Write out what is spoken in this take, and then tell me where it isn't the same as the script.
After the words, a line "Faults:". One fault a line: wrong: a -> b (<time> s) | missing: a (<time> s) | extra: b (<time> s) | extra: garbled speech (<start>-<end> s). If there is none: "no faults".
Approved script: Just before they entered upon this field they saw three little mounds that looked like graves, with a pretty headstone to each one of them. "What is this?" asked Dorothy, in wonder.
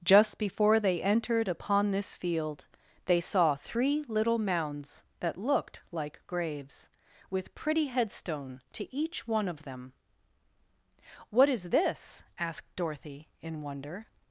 Just before they entered upon this field they saw three little mounds that looked like graves, with pretty headstone to each one of them. "What is this?" asked Dorothy, in wonder.
Faults:
missing: a (7.5 s)